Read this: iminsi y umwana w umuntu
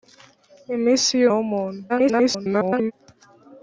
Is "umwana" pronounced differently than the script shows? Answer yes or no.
yes